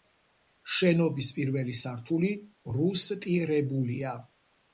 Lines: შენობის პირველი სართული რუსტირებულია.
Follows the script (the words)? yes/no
yes